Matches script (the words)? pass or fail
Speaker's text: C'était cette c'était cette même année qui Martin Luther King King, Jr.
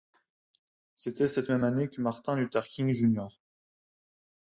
fail